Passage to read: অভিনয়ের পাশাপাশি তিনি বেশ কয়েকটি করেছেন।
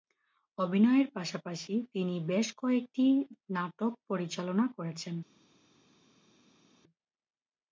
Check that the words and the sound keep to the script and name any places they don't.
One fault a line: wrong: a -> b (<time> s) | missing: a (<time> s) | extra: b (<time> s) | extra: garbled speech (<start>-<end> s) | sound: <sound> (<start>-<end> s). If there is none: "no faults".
extra: নাটক পরিচালনা (3.5 s)